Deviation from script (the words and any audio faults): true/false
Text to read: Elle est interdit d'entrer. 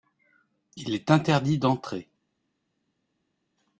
true